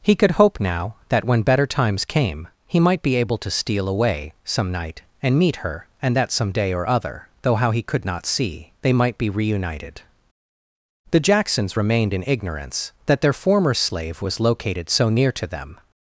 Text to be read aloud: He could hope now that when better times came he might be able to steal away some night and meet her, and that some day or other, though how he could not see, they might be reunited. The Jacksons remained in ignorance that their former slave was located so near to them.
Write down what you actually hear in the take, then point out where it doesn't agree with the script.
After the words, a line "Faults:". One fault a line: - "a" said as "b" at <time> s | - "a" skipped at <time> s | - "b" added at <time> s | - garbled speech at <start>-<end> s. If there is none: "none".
He could hope now that when better times came he might be able to steal away some night and meet her, and that some day or other, though how he could not see, they might be reunited. The Jacksons remained in ignorance that their former slave was located so near to them.
Faults:
none